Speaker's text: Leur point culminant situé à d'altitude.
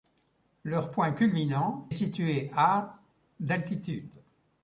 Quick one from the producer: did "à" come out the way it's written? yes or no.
yes